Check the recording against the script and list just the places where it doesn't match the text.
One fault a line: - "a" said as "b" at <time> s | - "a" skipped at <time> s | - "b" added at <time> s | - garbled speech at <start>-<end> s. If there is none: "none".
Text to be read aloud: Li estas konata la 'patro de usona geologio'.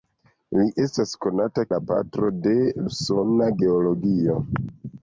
none